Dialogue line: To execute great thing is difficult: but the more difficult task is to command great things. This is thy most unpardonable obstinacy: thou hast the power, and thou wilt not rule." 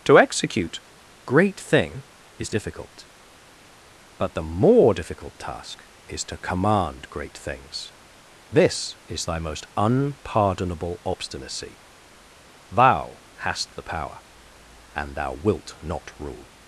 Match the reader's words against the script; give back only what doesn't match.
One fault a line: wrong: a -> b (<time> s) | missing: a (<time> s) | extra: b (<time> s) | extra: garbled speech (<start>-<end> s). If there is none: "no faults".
no faults